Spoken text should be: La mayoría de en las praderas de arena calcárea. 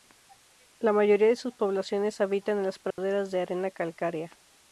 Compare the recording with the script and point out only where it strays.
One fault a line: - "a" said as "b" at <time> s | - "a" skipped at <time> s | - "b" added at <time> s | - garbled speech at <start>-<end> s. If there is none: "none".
- "sus poblaciones habitan" added at 1.4 s